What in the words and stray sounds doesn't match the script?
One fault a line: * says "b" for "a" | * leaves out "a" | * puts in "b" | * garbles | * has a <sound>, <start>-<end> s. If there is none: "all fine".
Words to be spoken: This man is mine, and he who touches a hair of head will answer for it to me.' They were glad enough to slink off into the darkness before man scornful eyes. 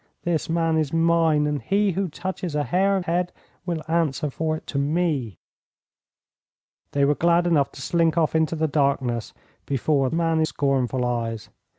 all fine